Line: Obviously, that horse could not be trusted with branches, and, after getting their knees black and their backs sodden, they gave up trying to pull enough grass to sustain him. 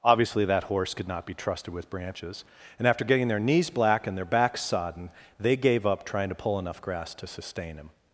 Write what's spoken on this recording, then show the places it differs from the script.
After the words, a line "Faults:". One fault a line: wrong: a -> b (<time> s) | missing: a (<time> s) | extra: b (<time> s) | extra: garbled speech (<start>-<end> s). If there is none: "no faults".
Obviously, that horse could not be trusted with branches, and, after getting their knees black and their backs sodden, they gave up trying to pull enough grass to sustain him.
Faults:
no faults